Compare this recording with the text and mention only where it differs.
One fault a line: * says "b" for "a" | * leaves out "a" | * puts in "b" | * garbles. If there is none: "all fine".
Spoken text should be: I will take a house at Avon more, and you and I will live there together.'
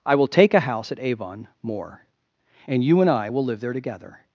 all fine